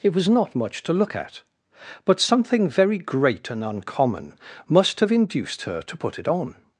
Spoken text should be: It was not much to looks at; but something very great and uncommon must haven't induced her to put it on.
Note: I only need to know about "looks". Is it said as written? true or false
false